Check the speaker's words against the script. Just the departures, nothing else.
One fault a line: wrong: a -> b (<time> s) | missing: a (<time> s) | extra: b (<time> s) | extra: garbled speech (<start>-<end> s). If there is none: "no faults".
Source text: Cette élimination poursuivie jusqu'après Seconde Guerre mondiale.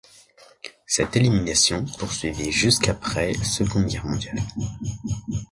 no faults